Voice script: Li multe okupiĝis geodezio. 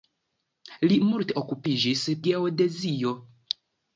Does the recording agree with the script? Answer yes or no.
yes